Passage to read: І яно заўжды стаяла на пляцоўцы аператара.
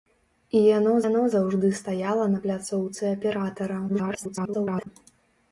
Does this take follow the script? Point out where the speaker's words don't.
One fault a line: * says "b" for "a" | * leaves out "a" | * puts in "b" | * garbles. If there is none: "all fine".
* puts in "яно"
* garbles